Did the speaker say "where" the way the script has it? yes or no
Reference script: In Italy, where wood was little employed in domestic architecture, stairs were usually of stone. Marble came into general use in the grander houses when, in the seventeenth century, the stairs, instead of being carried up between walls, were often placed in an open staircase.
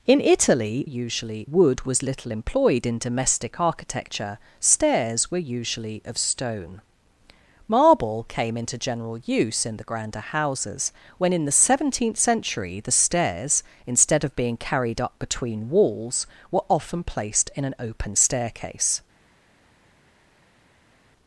no